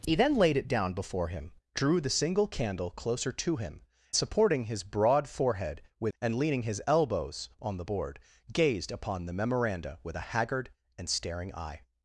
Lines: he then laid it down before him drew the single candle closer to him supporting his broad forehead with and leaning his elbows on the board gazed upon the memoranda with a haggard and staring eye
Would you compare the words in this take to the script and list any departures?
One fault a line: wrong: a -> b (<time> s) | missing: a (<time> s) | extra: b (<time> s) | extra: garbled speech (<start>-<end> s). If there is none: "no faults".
no faults